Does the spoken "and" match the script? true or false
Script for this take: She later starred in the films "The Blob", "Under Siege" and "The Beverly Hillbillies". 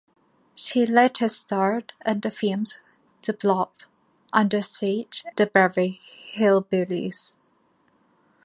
false